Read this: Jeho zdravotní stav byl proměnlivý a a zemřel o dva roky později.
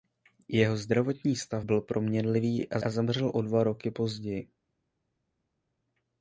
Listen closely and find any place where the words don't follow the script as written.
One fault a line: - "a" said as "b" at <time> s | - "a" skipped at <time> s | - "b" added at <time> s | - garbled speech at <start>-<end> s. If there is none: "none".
none